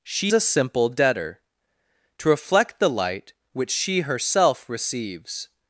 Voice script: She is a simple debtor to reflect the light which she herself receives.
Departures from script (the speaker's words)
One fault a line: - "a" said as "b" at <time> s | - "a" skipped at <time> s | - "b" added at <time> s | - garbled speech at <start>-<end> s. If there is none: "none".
- "is" skipped at 0.3 s